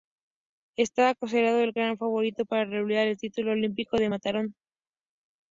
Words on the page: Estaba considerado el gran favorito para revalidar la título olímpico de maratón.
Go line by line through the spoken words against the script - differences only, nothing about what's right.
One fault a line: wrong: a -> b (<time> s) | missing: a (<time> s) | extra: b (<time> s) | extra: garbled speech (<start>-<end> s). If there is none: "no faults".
wrong: la -> el (3.1 s)